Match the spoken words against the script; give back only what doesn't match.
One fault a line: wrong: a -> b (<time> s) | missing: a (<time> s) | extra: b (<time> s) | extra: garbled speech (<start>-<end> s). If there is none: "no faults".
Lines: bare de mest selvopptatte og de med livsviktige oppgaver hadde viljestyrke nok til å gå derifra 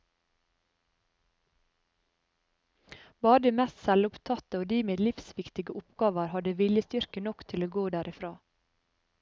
no faults